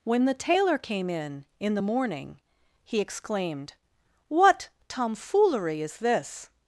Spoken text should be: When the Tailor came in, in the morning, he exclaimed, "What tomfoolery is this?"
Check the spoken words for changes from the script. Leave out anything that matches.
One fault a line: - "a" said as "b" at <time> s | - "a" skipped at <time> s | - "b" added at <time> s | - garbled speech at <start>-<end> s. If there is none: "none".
none